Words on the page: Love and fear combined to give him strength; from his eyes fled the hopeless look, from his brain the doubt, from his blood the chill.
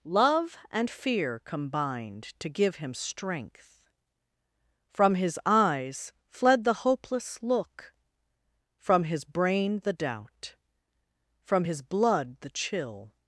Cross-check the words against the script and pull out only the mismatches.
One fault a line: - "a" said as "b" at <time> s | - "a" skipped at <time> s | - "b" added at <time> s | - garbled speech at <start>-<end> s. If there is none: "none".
none